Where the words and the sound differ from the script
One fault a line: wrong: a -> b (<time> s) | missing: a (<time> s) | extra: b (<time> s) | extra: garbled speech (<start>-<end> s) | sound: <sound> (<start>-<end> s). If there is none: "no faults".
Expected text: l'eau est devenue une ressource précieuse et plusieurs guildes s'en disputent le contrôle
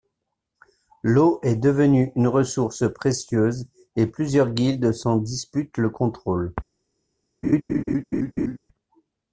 sound: laugh (7.4-8.6 s)